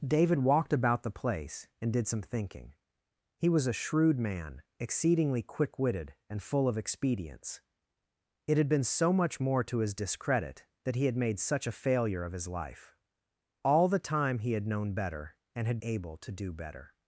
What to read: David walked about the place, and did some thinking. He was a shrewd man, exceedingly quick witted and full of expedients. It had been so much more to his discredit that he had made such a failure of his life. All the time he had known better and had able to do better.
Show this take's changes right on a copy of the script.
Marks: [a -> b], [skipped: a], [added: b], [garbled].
David walked about the place, and did some thinking. He was a shrewd man, exceedingly quick witted and full of expedients. It had been so much more to his discredit that he had made such a failure of his life. All the time he had known better and had able to do better.